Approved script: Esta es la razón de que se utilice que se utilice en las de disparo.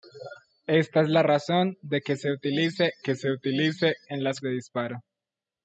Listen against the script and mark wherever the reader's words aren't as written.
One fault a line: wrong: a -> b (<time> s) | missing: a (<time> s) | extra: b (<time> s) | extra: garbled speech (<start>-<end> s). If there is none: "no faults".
no faults